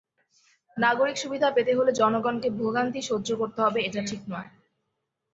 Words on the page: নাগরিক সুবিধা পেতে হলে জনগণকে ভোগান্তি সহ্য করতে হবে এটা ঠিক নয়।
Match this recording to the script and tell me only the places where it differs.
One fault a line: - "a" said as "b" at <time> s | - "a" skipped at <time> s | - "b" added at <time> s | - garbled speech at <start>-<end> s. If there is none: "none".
none